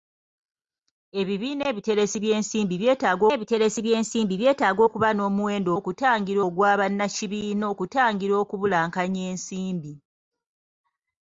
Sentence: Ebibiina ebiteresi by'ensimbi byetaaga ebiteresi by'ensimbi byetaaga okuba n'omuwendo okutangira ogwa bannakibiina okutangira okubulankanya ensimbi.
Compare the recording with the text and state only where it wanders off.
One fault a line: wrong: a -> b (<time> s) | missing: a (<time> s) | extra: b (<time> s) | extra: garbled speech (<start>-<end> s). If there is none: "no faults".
no faults